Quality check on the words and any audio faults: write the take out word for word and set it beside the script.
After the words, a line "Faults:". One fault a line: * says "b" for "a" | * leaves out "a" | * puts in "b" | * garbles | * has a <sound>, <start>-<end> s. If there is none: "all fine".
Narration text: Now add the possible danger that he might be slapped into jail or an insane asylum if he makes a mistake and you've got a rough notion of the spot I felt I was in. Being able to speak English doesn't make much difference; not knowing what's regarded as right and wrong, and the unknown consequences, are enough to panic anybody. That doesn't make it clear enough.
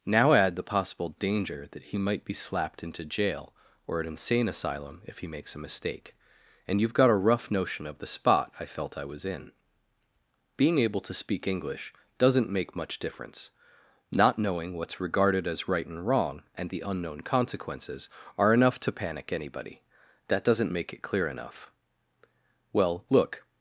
Now add the possible danger that he might be slapped into jail or an insane asylum if he makes a mistake and you've got a rough notion of the spot I felt I was in. Being able to speak English doesn't make much difference; not knowing what's regarded as right and wrong, and the unknown consequences, are enough to panic anybody. That doesn't make it clear enough. Well, look
Faults:
* puts in "Well look"